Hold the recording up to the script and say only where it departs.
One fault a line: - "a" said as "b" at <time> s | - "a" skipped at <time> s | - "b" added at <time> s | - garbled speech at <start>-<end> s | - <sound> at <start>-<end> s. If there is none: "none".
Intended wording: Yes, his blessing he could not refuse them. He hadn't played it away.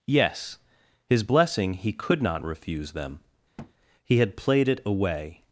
- thud at 3.6-3.7 s
- "hadn't" said as "had" at 4.2 s